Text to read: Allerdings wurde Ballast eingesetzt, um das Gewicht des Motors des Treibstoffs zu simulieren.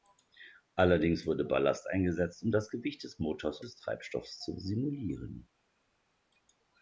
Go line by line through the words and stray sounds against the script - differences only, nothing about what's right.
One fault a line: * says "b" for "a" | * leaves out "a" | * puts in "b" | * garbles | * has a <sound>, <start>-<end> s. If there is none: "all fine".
all fine